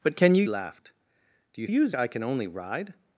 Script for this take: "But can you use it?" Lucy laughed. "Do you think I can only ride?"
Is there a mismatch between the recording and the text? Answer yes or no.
yes